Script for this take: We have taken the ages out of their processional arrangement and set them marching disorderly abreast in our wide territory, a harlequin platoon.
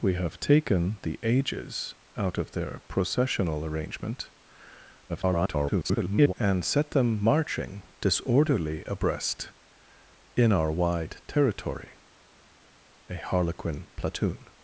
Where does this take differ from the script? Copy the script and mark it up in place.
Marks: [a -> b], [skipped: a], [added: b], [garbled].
We have taken the ages out of their processional arrangement [garbled] and set them marching disorderly abreast in our wide territory, a harlequin platoon.